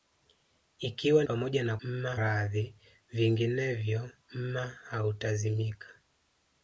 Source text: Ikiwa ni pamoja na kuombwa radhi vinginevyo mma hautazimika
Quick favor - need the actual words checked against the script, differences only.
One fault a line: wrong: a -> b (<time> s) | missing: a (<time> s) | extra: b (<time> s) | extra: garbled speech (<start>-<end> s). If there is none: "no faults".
missing: ni (1.2 s)
wrong: kuombwa -> mma (1.8 s)